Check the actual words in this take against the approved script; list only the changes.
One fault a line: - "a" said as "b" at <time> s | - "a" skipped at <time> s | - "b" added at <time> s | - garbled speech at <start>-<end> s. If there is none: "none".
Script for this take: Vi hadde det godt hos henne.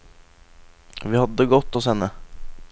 none